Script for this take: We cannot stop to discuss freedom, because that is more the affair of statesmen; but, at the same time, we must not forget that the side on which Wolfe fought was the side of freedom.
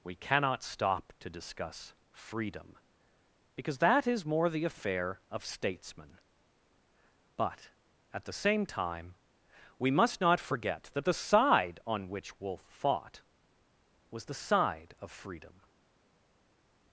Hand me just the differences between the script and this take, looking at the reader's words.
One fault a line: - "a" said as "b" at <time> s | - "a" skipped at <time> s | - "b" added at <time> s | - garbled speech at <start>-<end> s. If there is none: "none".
none